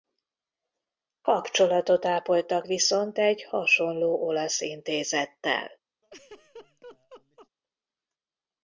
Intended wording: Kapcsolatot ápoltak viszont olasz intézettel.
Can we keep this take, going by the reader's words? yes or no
no